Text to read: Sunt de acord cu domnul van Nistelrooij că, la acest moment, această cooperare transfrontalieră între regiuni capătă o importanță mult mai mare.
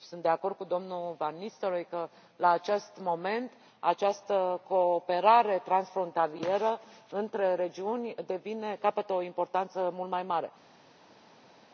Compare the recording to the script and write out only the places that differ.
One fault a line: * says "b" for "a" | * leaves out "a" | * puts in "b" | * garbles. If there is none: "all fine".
all fine